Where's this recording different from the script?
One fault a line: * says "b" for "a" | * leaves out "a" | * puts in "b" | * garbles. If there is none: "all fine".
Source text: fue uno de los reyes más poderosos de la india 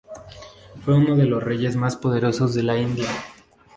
all fine